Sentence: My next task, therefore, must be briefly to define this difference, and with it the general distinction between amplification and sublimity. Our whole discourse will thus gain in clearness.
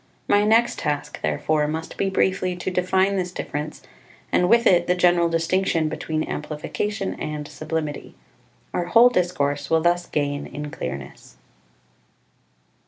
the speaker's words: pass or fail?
pass